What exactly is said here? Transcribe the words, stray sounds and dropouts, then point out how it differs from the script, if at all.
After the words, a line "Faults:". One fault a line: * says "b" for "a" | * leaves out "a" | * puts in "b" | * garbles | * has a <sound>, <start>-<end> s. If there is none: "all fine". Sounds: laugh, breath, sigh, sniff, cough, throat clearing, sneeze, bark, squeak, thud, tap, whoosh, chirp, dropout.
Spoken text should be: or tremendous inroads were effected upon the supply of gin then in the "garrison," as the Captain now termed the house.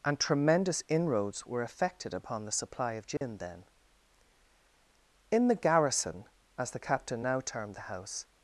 and tremendous inroads were effected upon the supply of gin then in the "garrison," as the Captain now termed the house.
Faults:
* says "and" for "or"
* has a dropout, 3.2-3.2 s